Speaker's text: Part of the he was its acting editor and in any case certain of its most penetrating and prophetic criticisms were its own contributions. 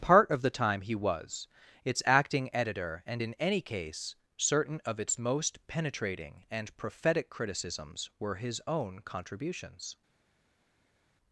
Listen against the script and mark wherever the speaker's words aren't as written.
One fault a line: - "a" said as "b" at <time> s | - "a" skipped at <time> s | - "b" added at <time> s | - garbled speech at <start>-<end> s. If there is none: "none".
- "time" added at 0.5 s
- "its" said as "his" at 8.4 s